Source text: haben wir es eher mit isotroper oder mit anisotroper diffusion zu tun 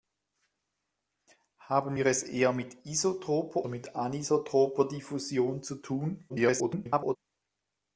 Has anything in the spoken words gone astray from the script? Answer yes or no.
yes